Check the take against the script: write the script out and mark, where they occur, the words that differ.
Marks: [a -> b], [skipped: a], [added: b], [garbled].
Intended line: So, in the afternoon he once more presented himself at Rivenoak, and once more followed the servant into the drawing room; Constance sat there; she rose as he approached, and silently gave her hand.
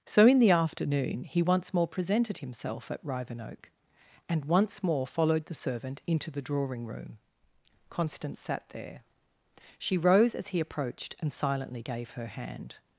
So, in the afternoon he once more presented himself at Rivenoak, and once more followed the servant into the drawing room; Constance sat there; she rose as he approached, and silently gave her hand.